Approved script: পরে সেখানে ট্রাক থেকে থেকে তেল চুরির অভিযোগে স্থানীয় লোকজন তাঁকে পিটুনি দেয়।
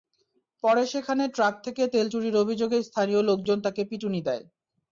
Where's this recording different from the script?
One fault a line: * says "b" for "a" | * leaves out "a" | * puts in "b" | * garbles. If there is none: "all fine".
* leaves out "থেকে"